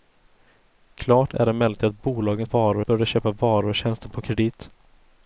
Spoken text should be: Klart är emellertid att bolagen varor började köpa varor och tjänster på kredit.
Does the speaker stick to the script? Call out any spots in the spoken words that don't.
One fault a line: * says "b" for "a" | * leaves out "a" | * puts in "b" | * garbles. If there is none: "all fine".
all fine